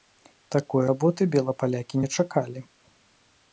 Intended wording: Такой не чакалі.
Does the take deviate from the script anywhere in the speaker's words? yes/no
yes